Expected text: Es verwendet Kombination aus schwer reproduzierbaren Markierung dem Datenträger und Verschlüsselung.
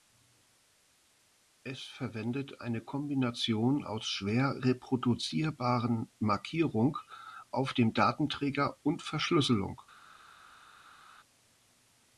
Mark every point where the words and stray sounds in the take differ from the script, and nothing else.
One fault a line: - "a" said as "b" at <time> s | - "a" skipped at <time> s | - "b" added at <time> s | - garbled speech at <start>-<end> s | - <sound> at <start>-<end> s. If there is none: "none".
- "eine" added at 2.6 s
- "auf" added at 7.5 s